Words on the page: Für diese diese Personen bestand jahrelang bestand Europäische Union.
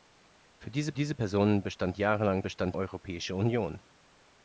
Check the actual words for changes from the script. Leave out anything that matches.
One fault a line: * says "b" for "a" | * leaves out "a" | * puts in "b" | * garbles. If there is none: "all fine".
all fine